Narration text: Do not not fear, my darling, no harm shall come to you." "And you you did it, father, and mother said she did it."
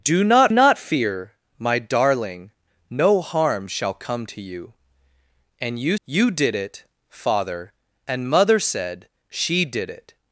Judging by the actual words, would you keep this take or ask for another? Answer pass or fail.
pass